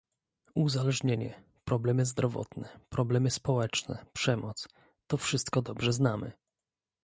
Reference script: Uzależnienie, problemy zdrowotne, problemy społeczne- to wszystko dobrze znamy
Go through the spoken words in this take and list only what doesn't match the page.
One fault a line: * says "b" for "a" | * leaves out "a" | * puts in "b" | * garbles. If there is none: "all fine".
* puts in "przemoc"